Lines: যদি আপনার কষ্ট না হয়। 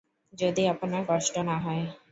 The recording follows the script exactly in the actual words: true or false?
true